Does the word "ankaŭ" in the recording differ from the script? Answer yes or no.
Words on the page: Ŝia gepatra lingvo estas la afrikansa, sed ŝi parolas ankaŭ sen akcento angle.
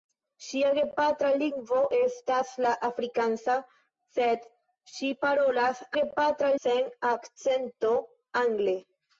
yes